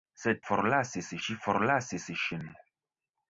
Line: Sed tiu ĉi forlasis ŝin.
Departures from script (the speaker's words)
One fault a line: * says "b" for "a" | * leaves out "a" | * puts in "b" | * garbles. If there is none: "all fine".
* says "forlasis" for "tiu"